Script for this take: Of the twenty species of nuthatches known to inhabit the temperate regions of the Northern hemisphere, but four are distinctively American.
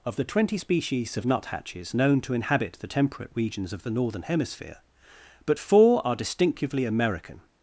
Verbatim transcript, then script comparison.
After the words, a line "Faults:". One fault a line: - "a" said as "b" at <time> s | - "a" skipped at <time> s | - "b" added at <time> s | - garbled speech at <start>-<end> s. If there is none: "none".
Of the twenty species of nuthatches known to inhabit the temperate regions of the Northern hemisphere, but four are distinctively American.
Faults:
none